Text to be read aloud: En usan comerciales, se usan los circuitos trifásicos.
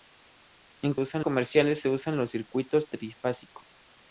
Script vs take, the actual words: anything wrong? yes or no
no